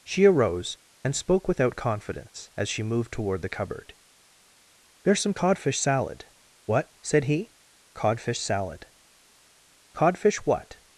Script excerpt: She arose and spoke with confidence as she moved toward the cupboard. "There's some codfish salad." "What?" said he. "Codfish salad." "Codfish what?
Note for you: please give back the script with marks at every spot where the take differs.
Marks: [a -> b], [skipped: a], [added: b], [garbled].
She arose and spoke [with -> without] confidence as she moved toward the cupboard. "There's some codfish salad." "What?" said he. "Codfish salad." "Codfish what?